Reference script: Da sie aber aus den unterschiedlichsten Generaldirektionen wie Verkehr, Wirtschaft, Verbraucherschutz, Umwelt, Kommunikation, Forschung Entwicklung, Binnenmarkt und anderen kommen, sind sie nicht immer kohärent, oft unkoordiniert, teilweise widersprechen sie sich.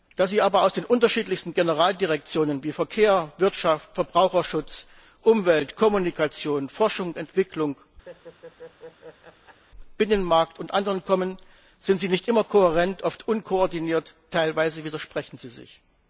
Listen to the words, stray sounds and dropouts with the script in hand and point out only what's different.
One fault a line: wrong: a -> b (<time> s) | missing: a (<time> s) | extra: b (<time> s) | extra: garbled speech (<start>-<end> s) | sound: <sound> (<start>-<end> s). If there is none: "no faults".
sound: laugh (8.1-9.6 s)